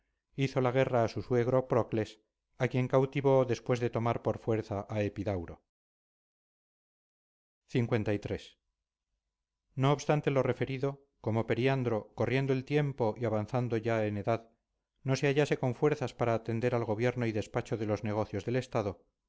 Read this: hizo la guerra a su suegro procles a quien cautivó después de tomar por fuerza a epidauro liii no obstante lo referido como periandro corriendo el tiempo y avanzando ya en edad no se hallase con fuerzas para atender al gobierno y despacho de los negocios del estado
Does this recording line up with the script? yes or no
yes